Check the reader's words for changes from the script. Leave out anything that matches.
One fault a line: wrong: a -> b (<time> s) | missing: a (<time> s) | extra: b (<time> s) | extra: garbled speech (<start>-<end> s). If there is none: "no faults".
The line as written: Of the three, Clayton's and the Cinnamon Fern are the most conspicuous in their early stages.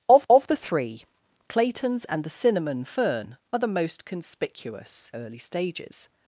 extra: of (0.3 s)
missing: in their (5.1 s)